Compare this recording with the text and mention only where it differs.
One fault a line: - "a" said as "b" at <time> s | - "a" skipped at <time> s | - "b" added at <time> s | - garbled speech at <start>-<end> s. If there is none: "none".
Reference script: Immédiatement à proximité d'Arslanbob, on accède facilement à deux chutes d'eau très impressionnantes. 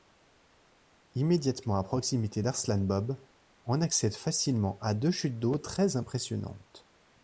none